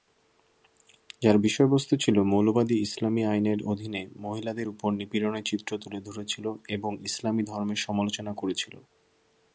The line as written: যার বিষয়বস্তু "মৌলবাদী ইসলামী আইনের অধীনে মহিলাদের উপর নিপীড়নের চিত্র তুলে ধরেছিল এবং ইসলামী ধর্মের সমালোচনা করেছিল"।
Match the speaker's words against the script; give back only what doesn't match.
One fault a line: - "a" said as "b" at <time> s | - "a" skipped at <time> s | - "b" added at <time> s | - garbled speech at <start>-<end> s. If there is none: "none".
- "ছিল" added at 2.0 s